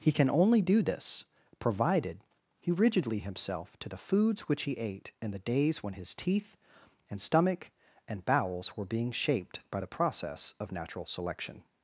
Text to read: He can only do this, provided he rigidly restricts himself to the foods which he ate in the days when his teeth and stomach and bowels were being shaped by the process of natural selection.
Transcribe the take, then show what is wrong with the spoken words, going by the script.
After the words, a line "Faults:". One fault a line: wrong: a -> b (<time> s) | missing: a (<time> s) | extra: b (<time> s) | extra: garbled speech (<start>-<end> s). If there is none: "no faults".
He can only do this, provided he rigidly himself to the foods which he ate in the days when his teeth and stomach and bowels were being shaped by the process of natural selection.
Faults:
missing: restricts (3.2 s)